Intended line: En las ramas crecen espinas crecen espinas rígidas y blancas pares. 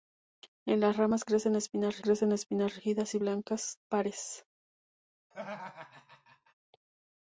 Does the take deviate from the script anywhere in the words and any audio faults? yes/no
yes